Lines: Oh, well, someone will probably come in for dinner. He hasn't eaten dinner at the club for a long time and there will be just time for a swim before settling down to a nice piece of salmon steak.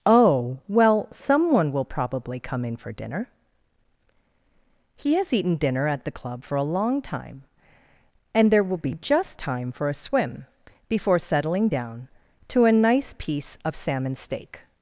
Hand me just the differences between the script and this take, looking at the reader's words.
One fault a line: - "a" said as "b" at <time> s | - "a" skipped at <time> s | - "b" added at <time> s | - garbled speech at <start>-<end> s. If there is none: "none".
- "hasn't" said as "has" at 5.2 s